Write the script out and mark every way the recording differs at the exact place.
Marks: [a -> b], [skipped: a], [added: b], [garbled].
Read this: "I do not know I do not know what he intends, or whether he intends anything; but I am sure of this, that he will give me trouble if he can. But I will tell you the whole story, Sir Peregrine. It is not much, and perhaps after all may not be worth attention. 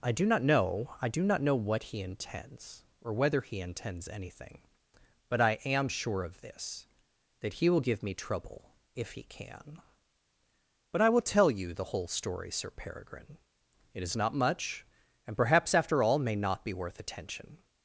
"I do not know I do not know what he intends, or whether he intends anything; but I am sure of this, that he will give me trouble if he can. But I will tell you the whole story, Sir Peregrine. It is not much, and perhaps after all may not be worth attention.